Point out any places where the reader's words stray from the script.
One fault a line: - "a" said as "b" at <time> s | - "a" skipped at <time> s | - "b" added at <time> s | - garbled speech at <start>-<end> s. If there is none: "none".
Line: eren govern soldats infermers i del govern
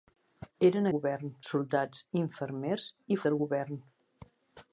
none